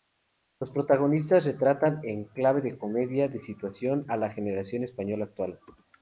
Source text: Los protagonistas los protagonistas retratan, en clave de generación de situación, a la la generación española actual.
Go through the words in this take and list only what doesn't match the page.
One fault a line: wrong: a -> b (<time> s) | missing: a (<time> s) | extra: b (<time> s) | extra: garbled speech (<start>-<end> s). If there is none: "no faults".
missing: los protagonistas (1.4 s)
wrong: generación -> comedia (2.8 s)
missing: la (4.3 s)